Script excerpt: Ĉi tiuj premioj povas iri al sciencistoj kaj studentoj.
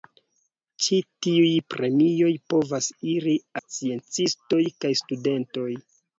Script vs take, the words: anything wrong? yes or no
yes